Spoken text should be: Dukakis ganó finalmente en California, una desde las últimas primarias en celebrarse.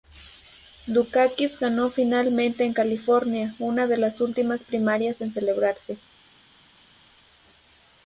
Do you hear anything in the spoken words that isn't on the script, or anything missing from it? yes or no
yes